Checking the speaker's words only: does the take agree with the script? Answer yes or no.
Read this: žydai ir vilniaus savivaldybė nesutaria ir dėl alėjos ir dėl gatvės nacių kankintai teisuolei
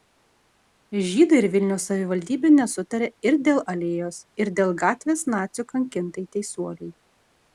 yes